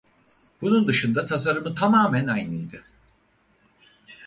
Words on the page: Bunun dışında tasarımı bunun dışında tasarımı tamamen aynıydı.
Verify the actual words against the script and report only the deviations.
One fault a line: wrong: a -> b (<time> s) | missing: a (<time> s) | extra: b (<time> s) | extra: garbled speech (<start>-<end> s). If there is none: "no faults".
missing: bunun dışında tasarımı (1.8 s)